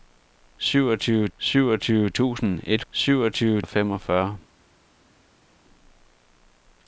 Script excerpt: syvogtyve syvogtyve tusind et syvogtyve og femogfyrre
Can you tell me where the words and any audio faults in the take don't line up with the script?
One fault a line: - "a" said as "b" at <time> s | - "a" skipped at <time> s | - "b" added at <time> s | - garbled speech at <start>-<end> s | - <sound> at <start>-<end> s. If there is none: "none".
none